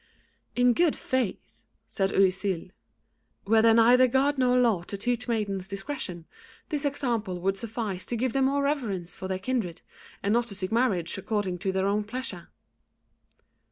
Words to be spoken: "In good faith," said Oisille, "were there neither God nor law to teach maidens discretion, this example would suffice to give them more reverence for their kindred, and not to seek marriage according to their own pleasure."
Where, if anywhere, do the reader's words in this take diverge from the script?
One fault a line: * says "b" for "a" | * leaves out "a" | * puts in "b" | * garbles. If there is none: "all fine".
all fine